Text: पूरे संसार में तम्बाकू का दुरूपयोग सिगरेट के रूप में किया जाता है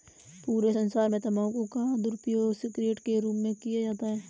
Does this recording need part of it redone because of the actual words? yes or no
no